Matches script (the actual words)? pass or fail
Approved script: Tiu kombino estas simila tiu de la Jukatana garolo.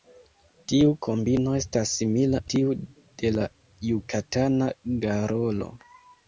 pass